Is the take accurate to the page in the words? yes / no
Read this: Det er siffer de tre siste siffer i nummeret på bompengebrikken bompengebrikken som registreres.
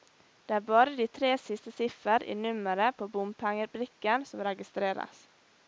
no